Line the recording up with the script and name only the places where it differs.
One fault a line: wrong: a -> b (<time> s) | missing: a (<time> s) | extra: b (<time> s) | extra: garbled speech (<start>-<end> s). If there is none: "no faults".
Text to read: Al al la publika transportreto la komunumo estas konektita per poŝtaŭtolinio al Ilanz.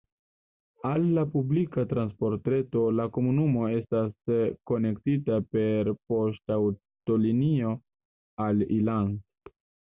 missing: al (1.0 s)